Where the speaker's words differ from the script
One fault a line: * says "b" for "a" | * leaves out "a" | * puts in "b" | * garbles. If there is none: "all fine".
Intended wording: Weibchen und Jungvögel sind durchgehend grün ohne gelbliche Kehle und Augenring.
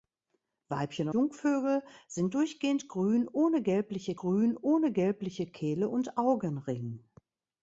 * leaves out "und"
* puts in "grün ohne gelbliche"